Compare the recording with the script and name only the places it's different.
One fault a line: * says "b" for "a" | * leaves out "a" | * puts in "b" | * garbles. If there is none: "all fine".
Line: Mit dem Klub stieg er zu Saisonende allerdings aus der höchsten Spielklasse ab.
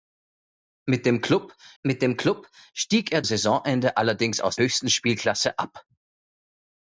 * puts in "mit dem Klub"
* leaves out "zu"
* leaves out "der"